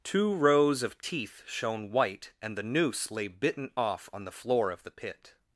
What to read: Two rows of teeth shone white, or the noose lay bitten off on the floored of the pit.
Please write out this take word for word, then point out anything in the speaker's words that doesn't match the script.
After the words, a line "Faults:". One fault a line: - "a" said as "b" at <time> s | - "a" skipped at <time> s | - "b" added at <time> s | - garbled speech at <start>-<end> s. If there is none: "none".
Two rows of teeth shone white, and the noose lay bitten off on the floor of the pit.
Faults:
- "or" said as "and" at 2.4 s
- "floored" said as "floor" at 4.3 s